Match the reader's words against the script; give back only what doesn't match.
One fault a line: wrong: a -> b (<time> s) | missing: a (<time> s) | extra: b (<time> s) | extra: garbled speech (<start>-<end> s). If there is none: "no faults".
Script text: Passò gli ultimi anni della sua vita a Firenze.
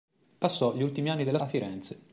missing: sua vita (1.4 s)